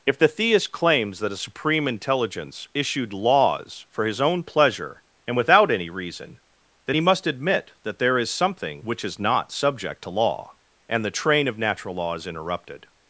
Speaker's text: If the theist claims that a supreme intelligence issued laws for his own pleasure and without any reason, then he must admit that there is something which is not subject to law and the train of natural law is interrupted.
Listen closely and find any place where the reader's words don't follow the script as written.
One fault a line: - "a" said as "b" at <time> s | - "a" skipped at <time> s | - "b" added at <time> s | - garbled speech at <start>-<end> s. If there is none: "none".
none